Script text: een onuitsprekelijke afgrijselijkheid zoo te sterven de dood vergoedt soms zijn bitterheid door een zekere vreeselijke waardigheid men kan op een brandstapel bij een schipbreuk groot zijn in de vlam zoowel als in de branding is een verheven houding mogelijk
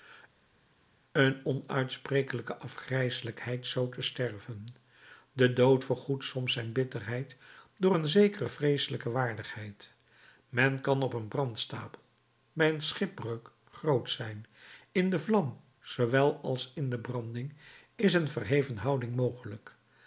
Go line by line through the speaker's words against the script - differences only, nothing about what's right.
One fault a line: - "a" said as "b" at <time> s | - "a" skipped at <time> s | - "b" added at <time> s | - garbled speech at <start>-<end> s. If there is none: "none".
none